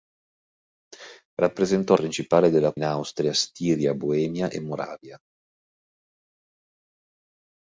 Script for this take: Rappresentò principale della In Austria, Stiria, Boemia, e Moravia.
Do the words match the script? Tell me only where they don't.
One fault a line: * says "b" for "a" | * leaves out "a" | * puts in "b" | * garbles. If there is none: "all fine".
all fine